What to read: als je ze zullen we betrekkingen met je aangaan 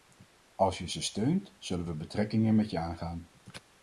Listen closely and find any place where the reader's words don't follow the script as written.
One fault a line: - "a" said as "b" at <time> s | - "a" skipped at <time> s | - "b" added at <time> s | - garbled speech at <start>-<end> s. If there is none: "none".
- "steunt" added at 1.0 s